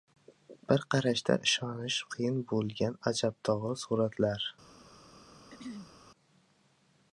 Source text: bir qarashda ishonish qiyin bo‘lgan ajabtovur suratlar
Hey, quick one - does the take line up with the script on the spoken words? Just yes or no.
yes